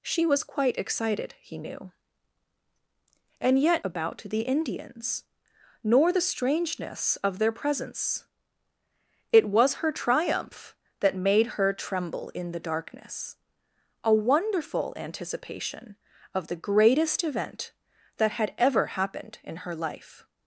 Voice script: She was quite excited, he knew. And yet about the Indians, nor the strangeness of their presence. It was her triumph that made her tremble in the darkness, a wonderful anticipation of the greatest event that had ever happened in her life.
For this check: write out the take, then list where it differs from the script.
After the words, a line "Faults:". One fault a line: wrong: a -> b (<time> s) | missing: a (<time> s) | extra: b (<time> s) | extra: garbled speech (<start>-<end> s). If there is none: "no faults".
She was quite excited, he knew. And yet about the Indians, nor the strangeness of their presence. It was her triumph that made her tremble in the darkness, a wonderful anticipation of the greatest event that had ever happened in her life.
Faults:
no faults